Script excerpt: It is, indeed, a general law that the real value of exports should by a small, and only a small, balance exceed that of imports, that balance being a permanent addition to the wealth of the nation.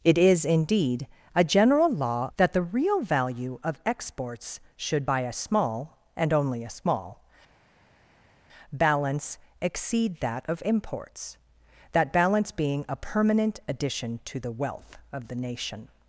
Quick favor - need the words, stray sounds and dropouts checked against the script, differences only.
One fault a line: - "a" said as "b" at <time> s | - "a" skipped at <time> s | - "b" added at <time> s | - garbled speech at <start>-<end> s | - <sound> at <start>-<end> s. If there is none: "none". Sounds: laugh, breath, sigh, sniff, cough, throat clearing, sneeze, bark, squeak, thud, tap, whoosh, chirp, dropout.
none